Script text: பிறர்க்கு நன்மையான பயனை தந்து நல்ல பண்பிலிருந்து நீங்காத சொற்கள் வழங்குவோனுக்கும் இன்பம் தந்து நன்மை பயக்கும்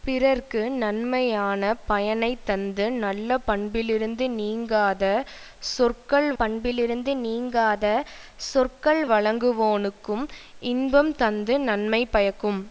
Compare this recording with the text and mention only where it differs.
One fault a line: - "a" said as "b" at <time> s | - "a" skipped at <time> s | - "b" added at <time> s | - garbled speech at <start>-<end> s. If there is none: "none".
- "பண்பிலிருந்து நீங்காத சொற்கள்" added at 6.4 s